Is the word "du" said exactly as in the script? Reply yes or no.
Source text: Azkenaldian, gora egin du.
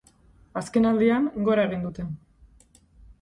no